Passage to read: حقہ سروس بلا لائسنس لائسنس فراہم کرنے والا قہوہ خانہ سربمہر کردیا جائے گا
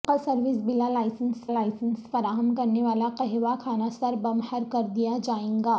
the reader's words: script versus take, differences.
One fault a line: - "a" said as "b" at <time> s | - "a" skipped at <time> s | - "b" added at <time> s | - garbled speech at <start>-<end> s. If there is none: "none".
none